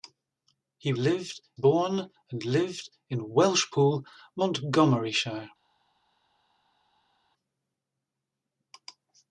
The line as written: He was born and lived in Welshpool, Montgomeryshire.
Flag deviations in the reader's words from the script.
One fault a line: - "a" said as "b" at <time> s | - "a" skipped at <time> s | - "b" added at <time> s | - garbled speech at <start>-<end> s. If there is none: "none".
- "was" said as "lived" at 1.0 s